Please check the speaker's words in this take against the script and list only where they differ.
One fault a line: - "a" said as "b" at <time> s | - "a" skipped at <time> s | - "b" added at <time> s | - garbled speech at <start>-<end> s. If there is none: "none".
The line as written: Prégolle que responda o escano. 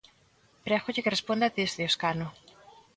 - "desde" added at 1.6 s